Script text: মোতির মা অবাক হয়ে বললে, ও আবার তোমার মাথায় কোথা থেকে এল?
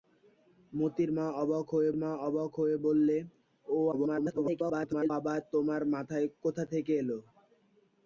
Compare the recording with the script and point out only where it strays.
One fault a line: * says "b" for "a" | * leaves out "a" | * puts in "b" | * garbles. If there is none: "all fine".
* puts in "মা অবাক হয়ে"
* garbles